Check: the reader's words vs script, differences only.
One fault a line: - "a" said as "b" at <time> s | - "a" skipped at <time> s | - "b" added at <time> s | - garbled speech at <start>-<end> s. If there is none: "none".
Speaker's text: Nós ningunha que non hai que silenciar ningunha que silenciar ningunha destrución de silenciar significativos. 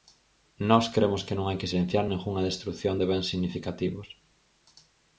- "ningunha" said as "cremos" at 0.9 s
- "que silenciar ningunha" skipped at 2.5 s
- "silenciar" said as "bens" at 3.1 s